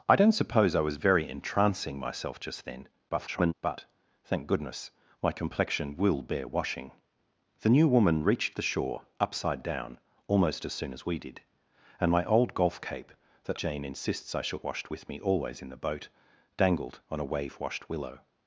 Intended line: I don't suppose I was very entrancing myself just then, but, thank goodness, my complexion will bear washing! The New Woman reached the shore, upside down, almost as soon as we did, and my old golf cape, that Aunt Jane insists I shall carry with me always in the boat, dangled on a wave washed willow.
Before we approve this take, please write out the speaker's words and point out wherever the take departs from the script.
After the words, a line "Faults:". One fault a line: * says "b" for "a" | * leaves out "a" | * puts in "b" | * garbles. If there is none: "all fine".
I don't suppose I was very entrancing myself just then, [garbled] but, thank goodness, my complexion will bear washing! The New Woman reached the shore, upside down, almost as soon as we did, and my old golf cape, that Jane insists I shall washed with me always in the boat, dangled on a wave washed willow.
Faults:
* garbles
* leaves out "Aunt"
* says "washed" for "carry"